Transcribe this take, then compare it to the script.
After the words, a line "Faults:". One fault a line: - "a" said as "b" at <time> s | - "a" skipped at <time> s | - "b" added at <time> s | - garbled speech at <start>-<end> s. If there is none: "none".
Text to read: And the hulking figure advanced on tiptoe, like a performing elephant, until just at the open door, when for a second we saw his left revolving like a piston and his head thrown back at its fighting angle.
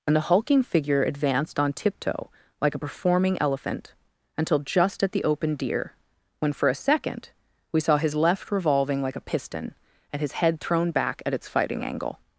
And the hulking figure advanced on tiptoe, like a performing elephant, until just at the open deer, when for a second we saw his left revolving like a piston and his head thrown back at its fighting angle.
Faults:
- "door" said as "deer" at 5.6 s